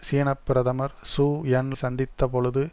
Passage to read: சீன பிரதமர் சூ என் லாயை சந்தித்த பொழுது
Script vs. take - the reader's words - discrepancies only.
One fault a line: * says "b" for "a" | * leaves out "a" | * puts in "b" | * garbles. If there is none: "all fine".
* leaves out "லாயை"